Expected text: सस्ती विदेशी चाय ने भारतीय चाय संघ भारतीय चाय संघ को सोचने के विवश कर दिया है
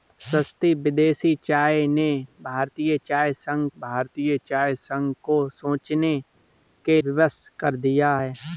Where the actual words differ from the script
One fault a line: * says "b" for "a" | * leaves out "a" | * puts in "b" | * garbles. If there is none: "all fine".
all fine